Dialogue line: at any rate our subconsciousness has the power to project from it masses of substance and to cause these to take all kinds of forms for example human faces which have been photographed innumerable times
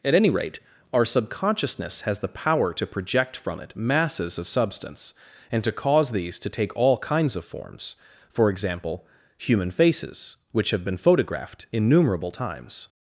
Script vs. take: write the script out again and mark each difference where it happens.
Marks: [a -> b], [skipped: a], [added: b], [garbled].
at any rate our subconsciousness has the power to project from it masses of substance and to cause these to take all kinds of forms for example human faces which have been photographed innumerable times